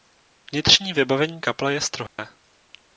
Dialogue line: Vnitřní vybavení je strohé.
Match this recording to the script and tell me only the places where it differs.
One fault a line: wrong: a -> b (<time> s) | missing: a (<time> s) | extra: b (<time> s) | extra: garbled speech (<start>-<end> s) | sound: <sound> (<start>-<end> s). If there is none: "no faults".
extra: kaple (1.4 s)
sound: dropout (2.1-2.2 s)